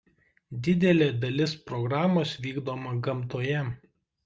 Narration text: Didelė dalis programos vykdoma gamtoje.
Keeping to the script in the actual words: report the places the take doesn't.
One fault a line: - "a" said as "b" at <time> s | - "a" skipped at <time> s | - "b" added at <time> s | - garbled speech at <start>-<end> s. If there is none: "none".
none